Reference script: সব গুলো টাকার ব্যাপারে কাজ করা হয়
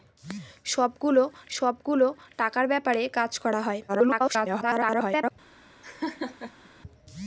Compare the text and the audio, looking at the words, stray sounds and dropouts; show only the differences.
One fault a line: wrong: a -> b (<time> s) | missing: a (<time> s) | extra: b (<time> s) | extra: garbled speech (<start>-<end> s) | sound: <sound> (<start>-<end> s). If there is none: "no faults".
extra: সব গুলো (1.5 s)
extra: garbled speech (3.9-5.3 s)
sound: laugh (5.8-6.7 s)